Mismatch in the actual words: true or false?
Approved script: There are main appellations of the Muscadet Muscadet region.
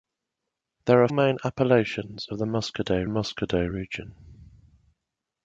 false